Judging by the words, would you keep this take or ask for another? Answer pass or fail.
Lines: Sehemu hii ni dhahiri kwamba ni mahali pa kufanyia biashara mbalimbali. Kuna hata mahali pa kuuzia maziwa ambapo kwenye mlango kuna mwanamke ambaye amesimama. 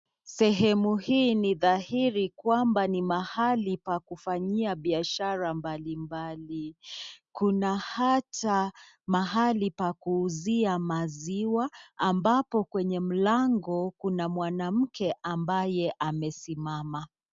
pass